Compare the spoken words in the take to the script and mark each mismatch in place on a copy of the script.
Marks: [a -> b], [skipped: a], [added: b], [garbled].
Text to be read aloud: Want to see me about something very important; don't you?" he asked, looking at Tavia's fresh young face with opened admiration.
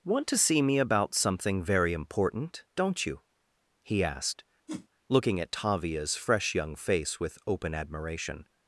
Want to see me about something very important; don't you?" he asked, looking at Tavia's fresh young face with [opened -> open] admiration.